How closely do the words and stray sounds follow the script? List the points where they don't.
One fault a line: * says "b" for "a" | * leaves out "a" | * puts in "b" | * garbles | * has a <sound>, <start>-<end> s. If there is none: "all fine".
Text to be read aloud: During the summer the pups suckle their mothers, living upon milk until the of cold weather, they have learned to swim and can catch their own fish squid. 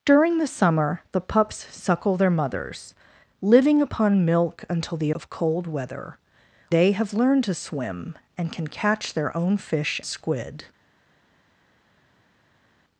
all fine